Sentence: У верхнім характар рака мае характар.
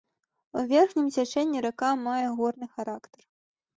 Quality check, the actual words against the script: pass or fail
fail